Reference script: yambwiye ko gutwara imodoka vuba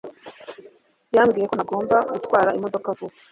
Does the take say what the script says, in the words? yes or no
no